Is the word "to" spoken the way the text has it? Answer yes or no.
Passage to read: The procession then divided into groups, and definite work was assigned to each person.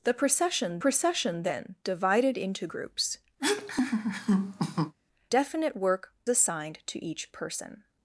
yes